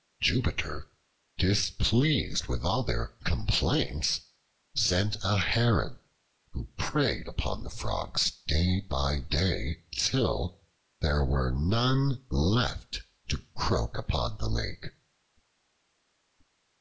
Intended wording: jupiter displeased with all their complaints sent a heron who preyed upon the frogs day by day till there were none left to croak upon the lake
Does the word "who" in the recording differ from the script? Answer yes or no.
no